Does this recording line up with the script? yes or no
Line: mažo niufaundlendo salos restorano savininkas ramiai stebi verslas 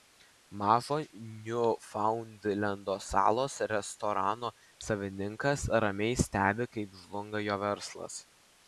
no